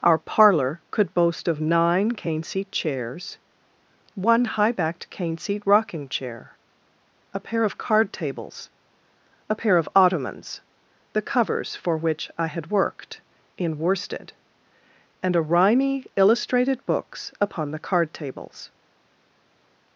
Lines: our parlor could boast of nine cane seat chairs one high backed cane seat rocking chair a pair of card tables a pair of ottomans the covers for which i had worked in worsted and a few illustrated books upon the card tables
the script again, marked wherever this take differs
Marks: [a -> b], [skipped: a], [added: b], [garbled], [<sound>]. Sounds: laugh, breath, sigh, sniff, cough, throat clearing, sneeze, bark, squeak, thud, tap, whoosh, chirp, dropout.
our parlor could boast of nine cane seat chairs one high backed cane seat rocking chair a pair of card tables a pair of ottomans the covers for which i had worked in worsted and a [few -> rimy] illustrated books upon the card tables